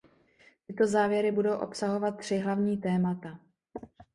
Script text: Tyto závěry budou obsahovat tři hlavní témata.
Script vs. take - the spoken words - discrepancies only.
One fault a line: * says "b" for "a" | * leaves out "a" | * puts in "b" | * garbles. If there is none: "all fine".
all fine